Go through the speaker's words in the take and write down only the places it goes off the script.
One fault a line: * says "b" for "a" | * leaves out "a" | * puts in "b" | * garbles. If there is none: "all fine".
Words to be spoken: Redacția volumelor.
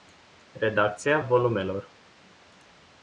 all fine